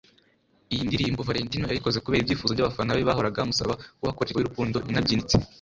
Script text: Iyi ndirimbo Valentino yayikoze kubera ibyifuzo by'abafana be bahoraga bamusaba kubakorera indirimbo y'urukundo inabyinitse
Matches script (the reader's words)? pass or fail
fail